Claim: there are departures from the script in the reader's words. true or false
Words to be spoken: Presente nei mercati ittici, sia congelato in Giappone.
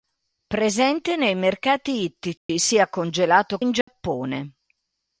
false